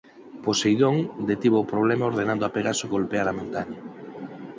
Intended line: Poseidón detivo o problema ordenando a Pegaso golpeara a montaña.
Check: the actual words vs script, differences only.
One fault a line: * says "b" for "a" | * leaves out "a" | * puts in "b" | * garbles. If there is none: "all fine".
all fine